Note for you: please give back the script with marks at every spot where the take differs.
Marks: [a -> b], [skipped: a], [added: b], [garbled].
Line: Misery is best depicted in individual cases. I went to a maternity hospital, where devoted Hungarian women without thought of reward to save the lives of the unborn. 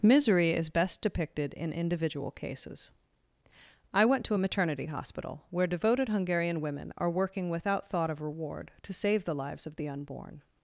Misery is best depicted in individual cases. I went to a maternity hospital, where devoted Hungarian women [added: are working] without thought of reward to save the lives of the unborn.